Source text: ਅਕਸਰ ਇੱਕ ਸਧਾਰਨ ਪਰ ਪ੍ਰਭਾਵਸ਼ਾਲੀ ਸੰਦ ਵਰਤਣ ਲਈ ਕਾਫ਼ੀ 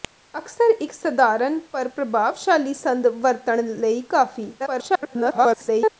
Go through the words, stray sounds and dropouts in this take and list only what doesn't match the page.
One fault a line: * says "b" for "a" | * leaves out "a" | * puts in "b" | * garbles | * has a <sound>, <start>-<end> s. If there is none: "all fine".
* garbles